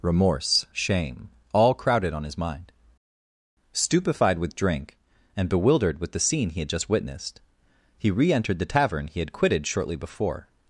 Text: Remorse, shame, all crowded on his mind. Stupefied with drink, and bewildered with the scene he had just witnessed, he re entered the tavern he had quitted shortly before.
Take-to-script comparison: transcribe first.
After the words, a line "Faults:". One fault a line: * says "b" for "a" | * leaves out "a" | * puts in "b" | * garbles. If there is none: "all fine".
Remorse, shame, all crowded on his mind. Stupefied with drink, and bewildered with the scene he had just witnessed, he re entered the tavern he had quitted shortly before.
Faults:
all fine